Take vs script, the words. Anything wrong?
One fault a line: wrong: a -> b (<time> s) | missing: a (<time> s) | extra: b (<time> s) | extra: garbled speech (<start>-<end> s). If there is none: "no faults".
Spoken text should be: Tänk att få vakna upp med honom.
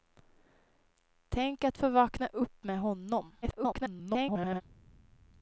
extra: garbled speech (3.4-4.6 s)